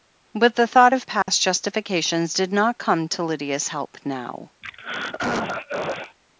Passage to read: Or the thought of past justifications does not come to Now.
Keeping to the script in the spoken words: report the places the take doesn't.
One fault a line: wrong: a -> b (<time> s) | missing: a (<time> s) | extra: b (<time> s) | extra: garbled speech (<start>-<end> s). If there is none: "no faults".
wrong: Or -> But (0.3 s)
wrong: does -> did (2.3 s)
extra: Lydia's help (3.2 s)